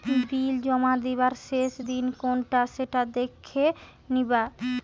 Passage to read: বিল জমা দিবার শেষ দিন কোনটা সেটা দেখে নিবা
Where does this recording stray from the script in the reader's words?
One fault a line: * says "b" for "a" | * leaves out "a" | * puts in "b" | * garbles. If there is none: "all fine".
all fine